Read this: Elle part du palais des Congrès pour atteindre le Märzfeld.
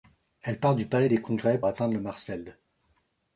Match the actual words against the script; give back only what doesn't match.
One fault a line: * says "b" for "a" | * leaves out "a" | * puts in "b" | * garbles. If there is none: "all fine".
* leaves out "pour"